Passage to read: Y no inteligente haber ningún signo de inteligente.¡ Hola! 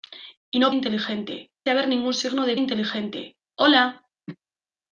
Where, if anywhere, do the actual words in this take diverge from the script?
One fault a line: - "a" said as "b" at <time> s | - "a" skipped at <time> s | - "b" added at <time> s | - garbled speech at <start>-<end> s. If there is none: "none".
none